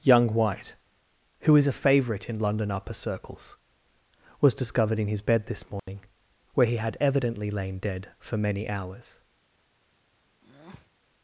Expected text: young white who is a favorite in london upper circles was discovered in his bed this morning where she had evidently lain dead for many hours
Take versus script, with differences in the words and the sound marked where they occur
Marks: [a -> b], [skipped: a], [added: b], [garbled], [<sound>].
young white who is a favorite in london upper circles was discovered in his bed this morning [dropout] where [she -> he] had evidently lain dead for many hours [breath]